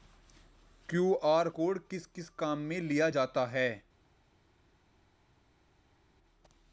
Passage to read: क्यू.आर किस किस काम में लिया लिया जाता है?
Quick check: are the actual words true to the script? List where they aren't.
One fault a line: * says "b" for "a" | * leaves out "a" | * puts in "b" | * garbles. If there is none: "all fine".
* puts in "कोड"
* leaves out "लिया"